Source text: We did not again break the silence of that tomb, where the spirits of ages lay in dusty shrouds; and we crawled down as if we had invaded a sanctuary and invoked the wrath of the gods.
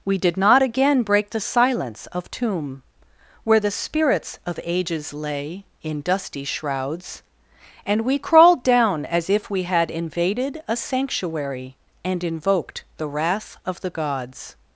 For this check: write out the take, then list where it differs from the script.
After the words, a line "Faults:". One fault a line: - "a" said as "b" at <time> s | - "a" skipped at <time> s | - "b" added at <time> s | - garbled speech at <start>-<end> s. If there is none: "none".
We did not again break the silence of tomb, where the spirits of ages lay in dusty shrouds; and we crawled down as if we had invaded a sanctuary and invoked the wrath of the gods.
Faults:
- "that" skipped at 2.3 s